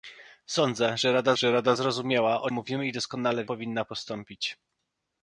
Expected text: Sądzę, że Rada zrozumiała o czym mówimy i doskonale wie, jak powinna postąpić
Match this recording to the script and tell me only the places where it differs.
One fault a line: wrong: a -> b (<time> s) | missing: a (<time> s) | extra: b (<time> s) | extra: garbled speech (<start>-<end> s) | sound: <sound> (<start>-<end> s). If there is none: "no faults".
extra: że Rada (1.4 s)
missing: czym (2.5 s)
missing: wie jak (3.5 s)